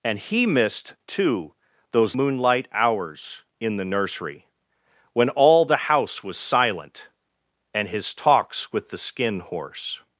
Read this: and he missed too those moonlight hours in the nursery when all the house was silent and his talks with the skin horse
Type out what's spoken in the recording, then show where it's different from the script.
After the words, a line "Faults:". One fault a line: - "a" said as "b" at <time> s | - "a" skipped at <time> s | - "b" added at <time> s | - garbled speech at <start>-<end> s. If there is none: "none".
and he missed too those moonlight hours in the nursery when all the house was silent and his talks with the skin horse
Faults:
none